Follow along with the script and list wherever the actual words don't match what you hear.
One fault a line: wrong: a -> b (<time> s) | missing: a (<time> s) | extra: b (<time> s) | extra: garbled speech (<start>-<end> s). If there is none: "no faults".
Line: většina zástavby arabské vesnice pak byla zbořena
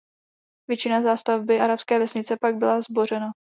no faults